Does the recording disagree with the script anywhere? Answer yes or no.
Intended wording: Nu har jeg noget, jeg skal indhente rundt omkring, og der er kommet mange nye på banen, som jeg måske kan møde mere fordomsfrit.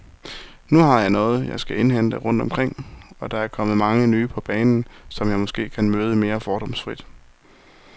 no